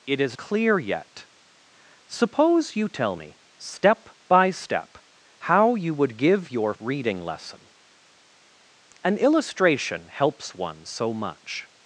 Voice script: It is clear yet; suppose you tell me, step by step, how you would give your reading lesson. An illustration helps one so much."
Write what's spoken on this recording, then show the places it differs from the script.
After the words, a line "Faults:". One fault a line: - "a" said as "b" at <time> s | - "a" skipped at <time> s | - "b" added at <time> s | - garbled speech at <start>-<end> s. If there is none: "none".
It is clear yet; suppose you tell me, step by step, how you would give your reading lesson. An illustration helps one so much."
Faults:
none